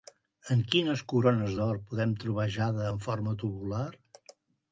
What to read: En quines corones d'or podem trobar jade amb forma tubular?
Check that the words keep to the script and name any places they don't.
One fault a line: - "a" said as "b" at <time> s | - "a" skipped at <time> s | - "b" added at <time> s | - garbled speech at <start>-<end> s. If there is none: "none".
- "amb" said as "en" at 2.9 s